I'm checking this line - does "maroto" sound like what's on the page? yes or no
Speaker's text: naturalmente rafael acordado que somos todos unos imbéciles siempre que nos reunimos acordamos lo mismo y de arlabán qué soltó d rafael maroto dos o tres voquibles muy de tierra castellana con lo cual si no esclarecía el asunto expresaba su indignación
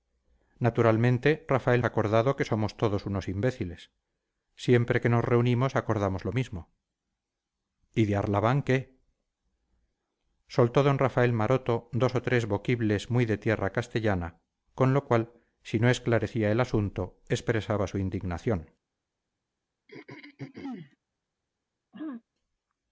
yes